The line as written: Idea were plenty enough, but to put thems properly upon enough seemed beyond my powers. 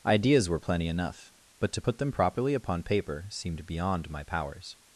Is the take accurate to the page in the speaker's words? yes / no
no